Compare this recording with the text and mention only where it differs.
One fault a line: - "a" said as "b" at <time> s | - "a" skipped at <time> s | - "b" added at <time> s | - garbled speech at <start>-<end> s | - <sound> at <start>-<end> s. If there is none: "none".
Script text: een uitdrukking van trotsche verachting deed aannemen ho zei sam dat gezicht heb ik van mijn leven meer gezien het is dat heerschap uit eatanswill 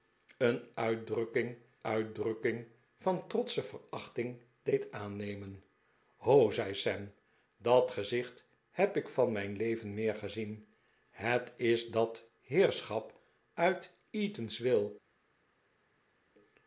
- "uitdrukking" added at 1.8 s